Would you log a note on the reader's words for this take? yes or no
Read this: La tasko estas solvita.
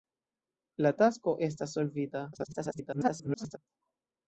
yes